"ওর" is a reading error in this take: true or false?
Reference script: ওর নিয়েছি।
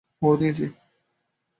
false